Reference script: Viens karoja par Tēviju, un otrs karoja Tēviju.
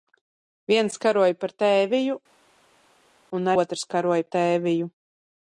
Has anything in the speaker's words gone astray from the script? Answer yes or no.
no